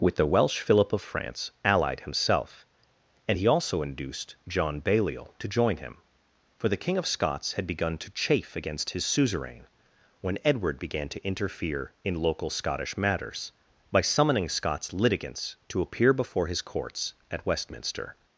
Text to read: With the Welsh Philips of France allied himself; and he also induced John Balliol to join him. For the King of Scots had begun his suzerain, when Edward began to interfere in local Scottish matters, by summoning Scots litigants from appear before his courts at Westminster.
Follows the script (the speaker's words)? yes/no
no